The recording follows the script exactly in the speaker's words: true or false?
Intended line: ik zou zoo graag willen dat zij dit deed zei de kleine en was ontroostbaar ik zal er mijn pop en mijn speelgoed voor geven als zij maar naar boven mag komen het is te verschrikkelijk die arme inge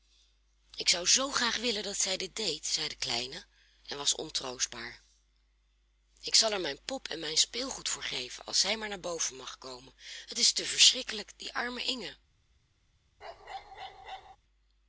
true